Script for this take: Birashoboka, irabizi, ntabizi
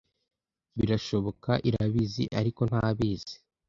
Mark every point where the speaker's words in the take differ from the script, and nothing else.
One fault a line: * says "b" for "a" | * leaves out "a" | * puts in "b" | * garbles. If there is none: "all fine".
* puts in "ariko"